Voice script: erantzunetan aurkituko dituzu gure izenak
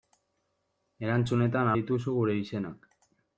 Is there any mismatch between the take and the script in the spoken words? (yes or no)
yes